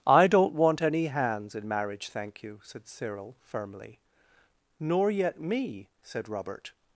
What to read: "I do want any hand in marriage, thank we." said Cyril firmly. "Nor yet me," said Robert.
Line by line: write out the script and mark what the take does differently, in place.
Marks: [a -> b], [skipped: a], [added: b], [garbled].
"I [do -> don't] want any [hand -> hands] in marriage, thank [we." -> you] said Cyril firmly. "Nor yet me," said Robert.